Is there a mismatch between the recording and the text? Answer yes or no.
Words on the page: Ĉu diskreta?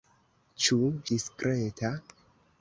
no